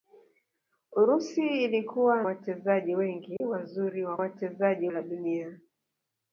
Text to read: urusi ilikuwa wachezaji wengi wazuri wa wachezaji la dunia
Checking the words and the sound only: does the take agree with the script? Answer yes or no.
no